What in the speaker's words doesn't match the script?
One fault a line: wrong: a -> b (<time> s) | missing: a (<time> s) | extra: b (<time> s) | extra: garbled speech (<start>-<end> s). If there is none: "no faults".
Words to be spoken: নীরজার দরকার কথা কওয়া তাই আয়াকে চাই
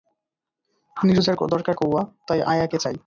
missing: কথা (1.8 s)